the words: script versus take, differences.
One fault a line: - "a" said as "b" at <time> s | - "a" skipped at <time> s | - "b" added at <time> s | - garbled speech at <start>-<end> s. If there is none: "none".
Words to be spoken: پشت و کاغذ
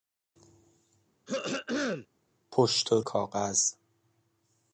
none